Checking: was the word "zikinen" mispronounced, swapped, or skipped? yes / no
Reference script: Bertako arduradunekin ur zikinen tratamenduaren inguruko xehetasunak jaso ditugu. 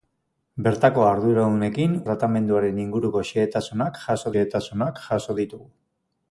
yes